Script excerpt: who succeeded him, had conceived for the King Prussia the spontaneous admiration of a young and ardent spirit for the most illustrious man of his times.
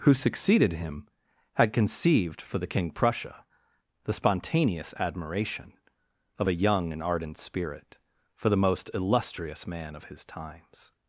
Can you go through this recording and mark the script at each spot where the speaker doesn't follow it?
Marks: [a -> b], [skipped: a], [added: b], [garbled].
who succeeded him, had conceived for the King Prussia the spontaneous admiration of a young and ardent spirit for the most illustrious man of his times.